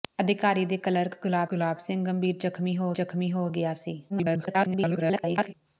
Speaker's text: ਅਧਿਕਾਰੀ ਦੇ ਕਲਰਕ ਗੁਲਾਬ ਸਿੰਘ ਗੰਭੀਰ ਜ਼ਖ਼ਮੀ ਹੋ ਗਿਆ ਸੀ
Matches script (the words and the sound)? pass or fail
fail